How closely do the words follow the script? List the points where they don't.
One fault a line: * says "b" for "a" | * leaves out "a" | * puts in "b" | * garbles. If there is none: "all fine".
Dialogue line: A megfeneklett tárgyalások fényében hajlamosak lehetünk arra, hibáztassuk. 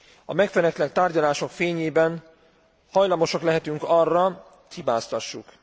all fine